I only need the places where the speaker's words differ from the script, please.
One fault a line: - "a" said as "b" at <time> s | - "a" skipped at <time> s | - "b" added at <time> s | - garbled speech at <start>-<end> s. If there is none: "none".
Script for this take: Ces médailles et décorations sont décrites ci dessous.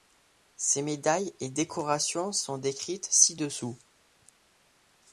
none